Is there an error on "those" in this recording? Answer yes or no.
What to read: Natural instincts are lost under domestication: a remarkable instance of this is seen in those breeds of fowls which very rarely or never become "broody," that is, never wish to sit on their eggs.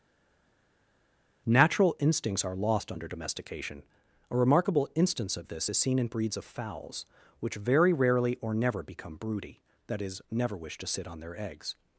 yes